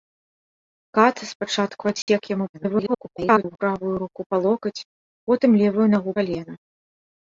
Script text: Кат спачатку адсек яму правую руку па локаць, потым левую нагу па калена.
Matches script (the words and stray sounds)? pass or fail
fail